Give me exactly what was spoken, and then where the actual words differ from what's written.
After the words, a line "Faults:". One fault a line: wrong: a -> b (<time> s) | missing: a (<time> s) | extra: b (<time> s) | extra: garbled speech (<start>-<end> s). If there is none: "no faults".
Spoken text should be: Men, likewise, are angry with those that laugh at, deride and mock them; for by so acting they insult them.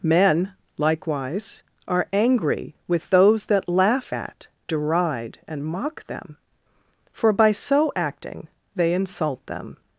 Men, likewise, are angry with those that laugh at, deride and mock them; for by so acting they insult them.
Faults:
no faults